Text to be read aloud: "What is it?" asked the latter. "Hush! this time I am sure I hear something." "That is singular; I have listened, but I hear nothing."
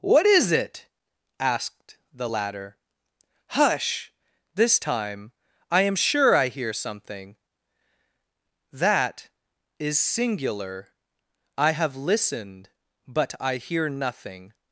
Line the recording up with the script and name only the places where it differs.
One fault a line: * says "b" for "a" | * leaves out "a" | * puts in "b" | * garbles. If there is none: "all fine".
all fine